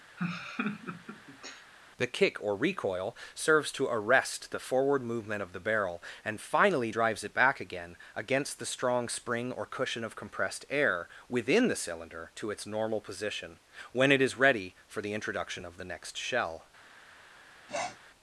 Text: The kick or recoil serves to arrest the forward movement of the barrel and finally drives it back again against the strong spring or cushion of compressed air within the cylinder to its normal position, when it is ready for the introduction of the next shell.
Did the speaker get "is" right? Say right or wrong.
right